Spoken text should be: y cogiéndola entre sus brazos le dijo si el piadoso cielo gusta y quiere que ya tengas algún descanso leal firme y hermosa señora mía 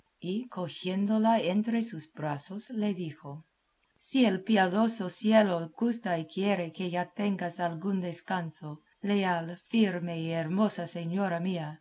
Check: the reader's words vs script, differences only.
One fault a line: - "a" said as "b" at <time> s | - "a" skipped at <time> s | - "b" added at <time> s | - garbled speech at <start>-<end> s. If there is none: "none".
none